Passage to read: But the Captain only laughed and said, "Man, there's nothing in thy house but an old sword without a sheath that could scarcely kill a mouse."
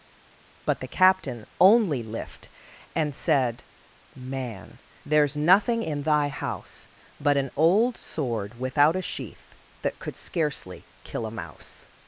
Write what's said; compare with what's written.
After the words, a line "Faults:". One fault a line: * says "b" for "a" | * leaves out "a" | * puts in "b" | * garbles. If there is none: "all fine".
But the Captain only lift and said, "Man, there's nothing in thy house but an old sword without a sheath that could scarcely kill a mouse."
Faults:
* says "lift" for "laughed"